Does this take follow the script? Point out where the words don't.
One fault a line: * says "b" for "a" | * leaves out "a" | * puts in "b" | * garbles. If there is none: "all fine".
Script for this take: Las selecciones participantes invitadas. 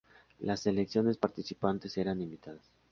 * puts in "eran"